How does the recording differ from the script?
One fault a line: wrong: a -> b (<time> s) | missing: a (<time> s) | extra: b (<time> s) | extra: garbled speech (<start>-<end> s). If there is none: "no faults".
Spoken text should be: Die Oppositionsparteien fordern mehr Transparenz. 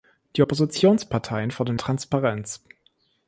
missing: mehr (1.8 s)